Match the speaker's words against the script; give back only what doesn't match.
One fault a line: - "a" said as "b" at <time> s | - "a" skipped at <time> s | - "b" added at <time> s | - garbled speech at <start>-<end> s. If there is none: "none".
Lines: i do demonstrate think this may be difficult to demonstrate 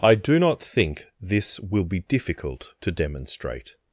- "demonstrate" said as "not" at 0.4 s
- "may" said as "will" at 1.6 s